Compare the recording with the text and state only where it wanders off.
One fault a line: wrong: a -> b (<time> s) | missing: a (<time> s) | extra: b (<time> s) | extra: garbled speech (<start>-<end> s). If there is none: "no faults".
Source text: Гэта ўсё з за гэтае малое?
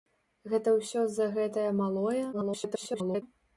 extra: garbled speech (2.3-3.2 s)